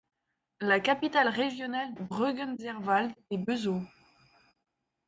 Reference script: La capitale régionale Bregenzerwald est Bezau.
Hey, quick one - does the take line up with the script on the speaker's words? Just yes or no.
yes